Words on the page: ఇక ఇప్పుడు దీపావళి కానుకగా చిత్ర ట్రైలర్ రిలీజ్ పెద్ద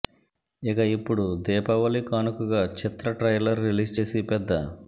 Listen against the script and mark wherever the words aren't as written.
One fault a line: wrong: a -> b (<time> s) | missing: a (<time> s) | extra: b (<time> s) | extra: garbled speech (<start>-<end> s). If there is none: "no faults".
extra: చేసి (3.9 s)